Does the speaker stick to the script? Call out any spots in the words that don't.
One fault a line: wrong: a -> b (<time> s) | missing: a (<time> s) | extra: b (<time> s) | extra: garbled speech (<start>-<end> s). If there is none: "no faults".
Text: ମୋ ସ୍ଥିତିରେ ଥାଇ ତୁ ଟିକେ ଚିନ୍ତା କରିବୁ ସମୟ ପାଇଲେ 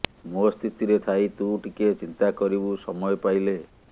no faults